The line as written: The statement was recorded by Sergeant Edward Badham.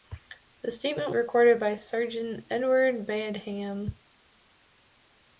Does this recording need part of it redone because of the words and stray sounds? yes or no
yes